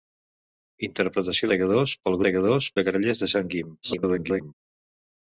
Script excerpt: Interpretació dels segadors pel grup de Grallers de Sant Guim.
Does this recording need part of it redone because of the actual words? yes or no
yes